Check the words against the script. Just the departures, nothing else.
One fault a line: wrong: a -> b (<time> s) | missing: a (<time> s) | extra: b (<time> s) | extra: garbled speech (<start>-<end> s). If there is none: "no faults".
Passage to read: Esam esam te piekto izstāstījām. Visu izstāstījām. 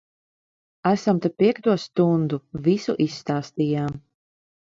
missing: esam (1.2 s)
wrong: izstāstījām -> stundu (1.8 s)